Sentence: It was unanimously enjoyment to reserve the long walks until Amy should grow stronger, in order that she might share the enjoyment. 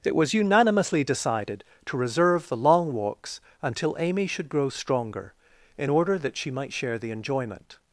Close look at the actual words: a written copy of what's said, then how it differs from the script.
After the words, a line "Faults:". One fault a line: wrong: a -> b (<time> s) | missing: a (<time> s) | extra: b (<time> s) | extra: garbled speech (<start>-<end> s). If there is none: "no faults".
It was unanimously decided to reserve the long walks until Amy should grow stronger, in order that she might share the enjoyment.
Faults:
wrong: enjoyment -> decided (1.0 s)